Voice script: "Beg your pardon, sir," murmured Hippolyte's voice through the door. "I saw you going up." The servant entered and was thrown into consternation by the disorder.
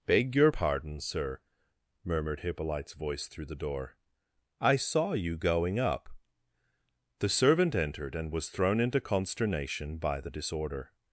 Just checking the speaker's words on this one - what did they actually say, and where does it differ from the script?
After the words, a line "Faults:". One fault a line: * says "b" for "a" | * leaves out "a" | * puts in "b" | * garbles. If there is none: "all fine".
"Beg your pardon, sir," murmured Hippolyte's voice through the door. "I saw you going up." The servant entered and was thrown into consternation by the disorder.
Faults:
all fine